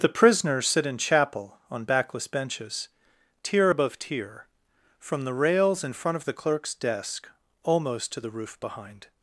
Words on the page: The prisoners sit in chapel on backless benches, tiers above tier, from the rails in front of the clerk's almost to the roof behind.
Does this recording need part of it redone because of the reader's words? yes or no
yes